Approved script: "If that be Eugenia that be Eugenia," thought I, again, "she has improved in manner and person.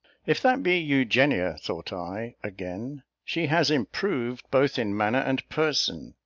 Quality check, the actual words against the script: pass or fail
fail